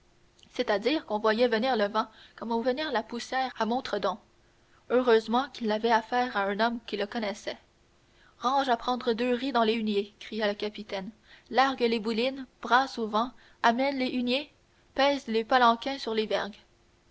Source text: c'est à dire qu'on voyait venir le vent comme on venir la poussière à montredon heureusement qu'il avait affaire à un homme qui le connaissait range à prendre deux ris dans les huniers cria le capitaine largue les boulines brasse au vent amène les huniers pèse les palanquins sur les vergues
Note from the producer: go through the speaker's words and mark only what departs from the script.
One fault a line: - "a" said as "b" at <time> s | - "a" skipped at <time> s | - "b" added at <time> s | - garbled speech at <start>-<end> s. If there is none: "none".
none